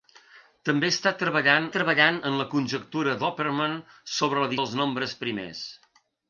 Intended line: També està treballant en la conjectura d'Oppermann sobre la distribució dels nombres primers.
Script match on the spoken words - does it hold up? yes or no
no